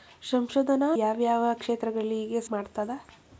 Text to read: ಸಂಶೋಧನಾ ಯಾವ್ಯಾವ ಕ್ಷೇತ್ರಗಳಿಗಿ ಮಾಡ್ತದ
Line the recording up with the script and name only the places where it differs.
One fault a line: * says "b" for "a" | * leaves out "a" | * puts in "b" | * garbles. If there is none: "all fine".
all fine